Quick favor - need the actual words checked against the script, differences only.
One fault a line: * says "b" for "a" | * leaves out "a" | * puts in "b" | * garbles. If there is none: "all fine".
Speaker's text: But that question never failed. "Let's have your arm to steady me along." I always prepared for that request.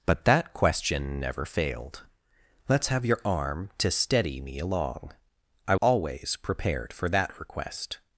all fine